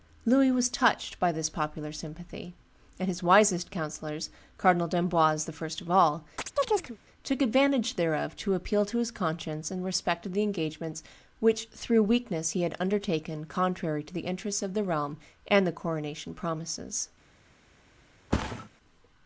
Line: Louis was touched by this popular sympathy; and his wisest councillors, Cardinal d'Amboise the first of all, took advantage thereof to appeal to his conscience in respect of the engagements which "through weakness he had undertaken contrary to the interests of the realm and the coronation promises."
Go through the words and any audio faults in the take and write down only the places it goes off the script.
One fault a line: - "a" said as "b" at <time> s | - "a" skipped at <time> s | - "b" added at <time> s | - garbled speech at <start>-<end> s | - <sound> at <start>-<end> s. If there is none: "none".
- chirp at 6.4-7.0 s
- thud at 18.3-18.7 s